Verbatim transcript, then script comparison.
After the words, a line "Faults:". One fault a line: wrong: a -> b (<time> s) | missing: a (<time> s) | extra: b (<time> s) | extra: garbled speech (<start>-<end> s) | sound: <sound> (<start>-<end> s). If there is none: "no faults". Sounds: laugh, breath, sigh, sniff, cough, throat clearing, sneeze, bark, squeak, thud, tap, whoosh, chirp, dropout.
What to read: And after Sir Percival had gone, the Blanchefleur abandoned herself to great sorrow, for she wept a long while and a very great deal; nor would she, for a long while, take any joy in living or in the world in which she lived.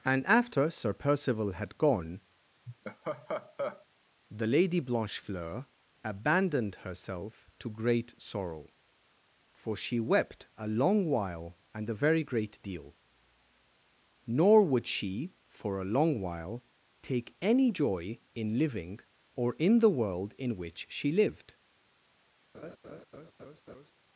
And after Sir Percival had gone, the Lady Blanchefleur abandoned herself to great sorrow, for she wept a long while and a very great deal; nor would she, for a long while, take any joy in living or in the world in which she lived.
Faults:
sound: laugh (2.7-3.9 s)
extra: Lady (4.5 s)
sound: laugh (22.5-23.9 s)